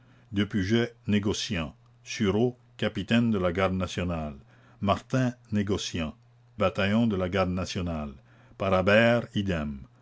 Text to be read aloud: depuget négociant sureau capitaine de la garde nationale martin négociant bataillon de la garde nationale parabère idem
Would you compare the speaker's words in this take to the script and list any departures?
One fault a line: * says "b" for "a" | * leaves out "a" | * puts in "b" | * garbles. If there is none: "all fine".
all fine